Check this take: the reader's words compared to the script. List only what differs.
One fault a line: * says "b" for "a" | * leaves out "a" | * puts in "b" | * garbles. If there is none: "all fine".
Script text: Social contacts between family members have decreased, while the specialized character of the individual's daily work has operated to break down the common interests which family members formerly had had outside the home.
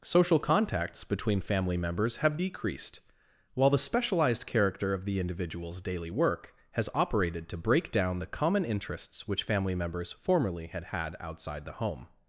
all fine